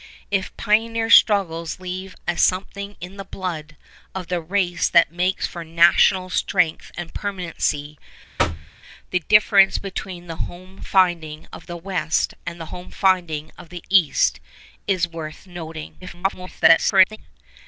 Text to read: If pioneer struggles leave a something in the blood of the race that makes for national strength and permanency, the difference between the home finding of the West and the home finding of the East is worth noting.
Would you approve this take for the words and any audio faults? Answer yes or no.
no